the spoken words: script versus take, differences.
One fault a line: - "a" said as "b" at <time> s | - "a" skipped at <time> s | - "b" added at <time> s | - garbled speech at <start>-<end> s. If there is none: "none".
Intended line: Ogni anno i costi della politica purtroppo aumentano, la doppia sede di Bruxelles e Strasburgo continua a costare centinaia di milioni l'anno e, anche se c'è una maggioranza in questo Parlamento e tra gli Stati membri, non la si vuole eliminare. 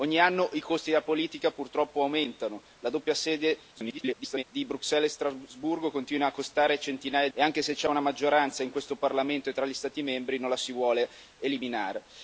- garbled speech at 3.7-4.4 s
- "di milioni l'anno" skipped at 7.3 s